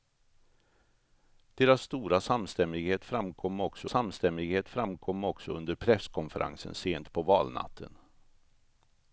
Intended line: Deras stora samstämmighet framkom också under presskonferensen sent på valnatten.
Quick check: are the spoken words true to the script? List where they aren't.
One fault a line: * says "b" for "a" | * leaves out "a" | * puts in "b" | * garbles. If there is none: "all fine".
* puts in "samstämmighet framkom också"